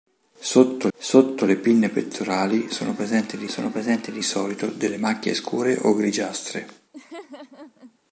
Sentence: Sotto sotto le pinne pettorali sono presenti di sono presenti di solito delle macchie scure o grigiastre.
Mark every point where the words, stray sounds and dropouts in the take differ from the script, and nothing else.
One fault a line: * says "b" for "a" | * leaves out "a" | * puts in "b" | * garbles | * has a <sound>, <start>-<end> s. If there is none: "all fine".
* has a laugh, 6.9-8.0 s